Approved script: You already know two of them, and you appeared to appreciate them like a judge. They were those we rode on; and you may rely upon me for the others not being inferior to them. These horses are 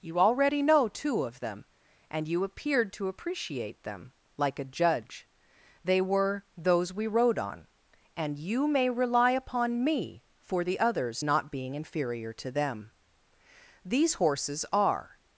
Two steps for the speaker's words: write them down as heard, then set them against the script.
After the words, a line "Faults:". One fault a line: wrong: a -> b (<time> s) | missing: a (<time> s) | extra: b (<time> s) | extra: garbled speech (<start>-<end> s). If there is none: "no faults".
You already know two of them, and you appeared to appreciate them like a judge. They were those we rode on; and you may rely upon me for the others not being inferior to them. These horses are
Faults:
no faults